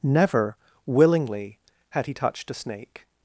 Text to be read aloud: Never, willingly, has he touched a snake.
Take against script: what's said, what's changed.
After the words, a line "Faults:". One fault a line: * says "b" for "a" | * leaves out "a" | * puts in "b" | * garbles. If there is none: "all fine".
Never, willingly, had he touched a snake.
Faults:
* says "had" for "has"